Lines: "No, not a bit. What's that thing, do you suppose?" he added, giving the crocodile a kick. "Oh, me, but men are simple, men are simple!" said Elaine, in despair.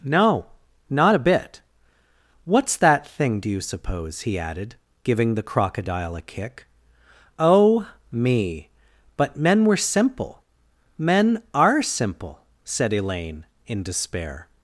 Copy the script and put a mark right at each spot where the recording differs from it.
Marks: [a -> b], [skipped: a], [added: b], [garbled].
"No, not a bit. What's that thing, do you suppose?" he added, giving the crocodile a kick. "Oh, me, but men [are -> were] simple, men are simple!" said Elaine, in despair.